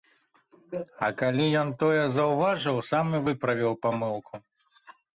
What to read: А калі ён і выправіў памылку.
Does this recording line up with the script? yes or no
no